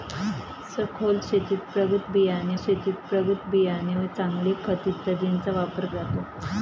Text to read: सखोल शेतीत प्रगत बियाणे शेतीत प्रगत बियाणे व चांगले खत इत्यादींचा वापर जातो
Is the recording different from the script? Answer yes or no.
no